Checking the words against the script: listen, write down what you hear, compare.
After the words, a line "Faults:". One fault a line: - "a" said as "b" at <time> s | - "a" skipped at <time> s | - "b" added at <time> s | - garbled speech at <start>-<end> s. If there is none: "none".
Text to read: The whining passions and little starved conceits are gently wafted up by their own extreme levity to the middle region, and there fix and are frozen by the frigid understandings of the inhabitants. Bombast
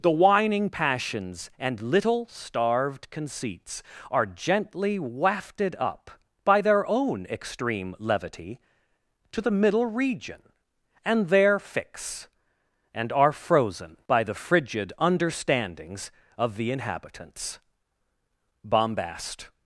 The whining passions and little starved conceits are gently wafted up by their own extreme levity to the middle region, and there fix and are frozen by the frigid understandings of the inhabitants. Bombast
Faults:
none